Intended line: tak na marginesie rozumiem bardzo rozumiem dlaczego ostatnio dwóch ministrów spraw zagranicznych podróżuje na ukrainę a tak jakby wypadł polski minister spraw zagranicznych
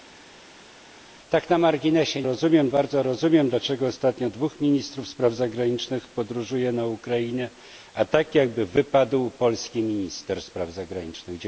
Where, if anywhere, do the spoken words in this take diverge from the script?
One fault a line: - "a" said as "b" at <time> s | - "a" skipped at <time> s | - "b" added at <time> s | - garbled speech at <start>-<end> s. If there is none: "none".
none